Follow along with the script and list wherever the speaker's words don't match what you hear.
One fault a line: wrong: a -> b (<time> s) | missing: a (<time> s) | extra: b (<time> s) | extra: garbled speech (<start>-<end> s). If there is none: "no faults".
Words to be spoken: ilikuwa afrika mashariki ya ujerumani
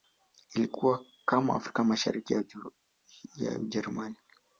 extra: kama (1.2 s)